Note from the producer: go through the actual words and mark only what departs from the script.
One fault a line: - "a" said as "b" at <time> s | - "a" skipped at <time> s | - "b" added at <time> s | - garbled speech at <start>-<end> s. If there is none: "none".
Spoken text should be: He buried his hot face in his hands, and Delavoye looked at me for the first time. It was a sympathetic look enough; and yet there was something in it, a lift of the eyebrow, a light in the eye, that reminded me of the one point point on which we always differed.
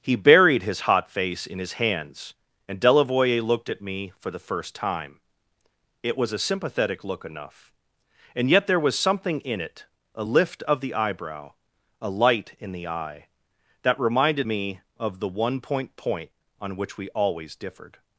none